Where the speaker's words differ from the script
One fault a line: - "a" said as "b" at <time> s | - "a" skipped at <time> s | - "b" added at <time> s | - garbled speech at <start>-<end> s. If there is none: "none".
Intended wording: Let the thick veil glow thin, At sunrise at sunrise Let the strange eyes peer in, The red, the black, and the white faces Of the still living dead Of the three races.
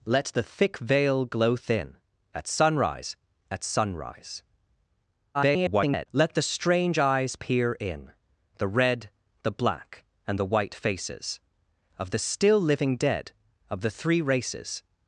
- garbled speech at 5.3-6.1 s